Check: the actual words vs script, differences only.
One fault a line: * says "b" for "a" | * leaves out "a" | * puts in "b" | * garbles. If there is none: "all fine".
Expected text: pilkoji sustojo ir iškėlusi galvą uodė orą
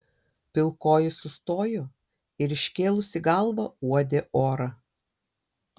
all fine